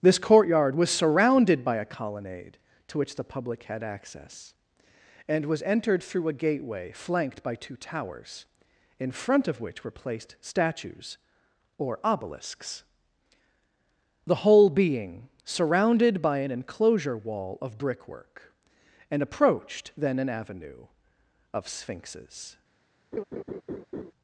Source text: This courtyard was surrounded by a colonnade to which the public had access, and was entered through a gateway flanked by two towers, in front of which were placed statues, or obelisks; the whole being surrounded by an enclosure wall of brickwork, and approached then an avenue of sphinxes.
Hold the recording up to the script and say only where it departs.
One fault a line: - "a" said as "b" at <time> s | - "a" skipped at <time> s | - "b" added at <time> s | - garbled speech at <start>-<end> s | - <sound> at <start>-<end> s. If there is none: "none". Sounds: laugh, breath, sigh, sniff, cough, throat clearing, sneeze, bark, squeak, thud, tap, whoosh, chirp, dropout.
- laugh at 23.1-24.1 s